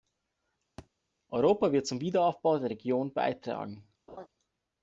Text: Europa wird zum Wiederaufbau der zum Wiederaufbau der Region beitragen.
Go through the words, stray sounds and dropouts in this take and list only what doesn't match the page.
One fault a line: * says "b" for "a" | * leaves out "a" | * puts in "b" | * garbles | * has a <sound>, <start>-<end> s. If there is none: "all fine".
* has a thud, 0.8-0.9 s
* leaves out "zum Wiederaufbau der"
* has a laugh, 4.1-4.3 s